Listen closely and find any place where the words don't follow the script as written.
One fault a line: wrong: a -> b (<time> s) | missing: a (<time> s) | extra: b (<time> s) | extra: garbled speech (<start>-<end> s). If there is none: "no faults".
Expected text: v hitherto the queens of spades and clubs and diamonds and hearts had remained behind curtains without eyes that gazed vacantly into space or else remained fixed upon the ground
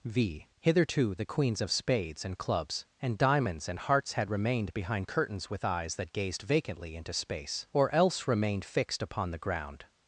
wrong: without -> with (5.5 s)